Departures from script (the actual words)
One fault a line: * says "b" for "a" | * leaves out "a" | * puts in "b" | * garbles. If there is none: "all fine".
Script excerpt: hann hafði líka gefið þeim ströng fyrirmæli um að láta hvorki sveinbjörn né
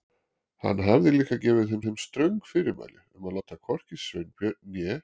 * puts in "þeim"